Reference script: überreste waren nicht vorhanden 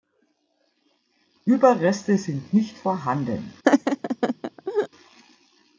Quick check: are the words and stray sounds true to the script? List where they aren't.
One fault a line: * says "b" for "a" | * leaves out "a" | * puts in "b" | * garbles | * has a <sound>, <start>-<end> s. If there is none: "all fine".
* says "sind" for "waren"
* has a laugh, 3.6-4.9 s